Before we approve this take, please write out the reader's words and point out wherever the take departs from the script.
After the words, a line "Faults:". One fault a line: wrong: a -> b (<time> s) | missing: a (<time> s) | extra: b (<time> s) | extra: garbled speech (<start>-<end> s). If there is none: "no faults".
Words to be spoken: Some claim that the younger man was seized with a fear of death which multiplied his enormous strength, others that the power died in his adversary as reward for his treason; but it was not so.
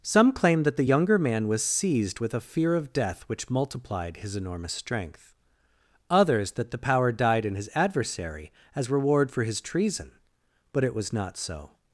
Some claim that the younger man was seized with a fear of death which multiplied his enormous strength, others that the power died in his adversary as reward for his treason; but it was not so.
Faults:
no faults